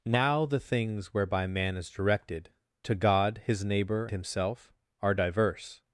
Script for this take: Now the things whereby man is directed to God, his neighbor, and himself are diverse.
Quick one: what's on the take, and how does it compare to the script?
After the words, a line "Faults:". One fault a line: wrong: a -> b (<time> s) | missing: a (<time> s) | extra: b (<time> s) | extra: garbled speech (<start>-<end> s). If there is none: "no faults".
Now the things whereby man is directed to God, his neighbor, himself are diverse.
Faults:
missing: and (4.1 s)